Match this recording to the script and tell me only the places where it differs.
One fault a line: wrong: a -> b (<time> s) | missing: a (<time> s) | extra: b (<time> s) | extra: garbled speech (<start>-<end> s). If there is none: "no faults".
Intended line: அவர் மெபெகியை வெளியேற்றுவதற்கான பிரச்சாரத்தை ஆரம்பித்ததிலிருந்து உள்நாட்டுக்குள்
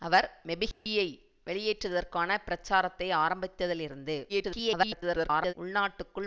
extra: garbled speech (4.3-5.5 s)